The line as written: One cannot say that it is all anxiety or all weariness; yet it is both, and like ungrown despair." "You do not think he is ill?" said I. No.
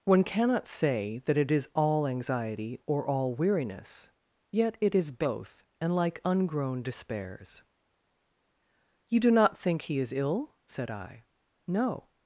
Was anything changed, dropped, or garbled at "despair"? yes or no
yes